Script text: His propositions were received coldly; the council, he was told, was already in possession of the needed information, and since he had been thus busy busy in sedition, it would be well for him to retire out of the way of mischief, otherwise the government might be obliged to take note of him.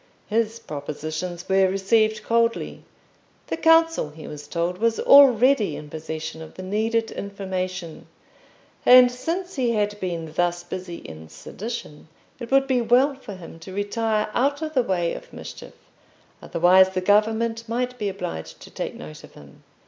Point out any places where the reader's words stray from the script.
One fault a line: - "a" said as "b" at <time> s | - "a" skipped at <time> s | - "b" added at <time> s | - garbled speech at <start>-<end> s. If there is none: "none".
- "busy" skipped at 10.9 s